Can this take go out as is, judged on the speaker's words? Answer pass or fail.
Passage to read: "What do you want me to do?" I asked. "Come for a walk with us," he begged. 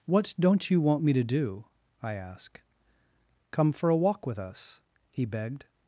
fail